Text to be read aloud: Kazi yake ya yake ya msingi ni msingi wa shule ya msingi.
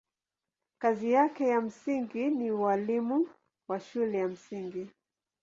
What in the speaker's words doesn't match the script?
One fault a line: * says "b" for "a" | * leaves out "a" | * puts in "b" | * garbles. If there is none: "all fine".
* leaves out "yake ya"
* says "ualimu" for "msingi"